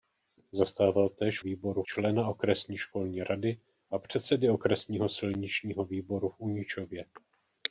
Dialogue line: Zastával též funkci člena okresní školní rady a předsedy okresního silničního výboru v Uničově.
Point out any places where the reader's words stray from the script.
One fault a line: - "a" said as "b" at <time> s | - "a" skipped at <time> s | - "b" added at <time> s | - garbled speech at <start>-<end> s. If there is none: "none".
- "funkci" said as "výboru" at 1.4 s